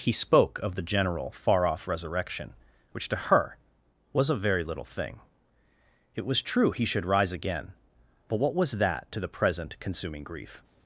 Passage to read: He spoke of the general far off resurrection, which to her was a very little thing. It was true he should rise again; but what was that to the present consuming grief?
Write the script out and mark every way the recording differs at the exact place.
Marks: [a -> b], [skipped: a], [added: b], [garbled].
He spoke of the general far off resurrection, which to her was a very little thing. It was true he should rise again; but what was that to the present consuming grief?